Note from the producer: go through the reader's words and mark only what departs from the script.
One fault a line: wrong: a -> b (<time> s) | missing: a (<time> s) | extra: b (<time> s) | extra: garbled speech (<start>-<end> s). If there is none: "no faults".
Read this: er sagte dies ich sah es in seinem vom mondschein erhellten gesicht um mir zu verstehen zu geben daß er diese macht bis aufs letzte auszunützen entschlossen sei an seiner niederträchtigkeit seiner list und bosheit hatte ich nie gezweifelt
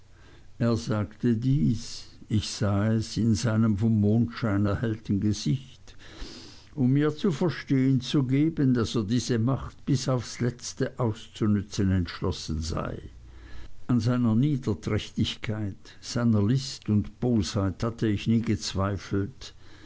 no faults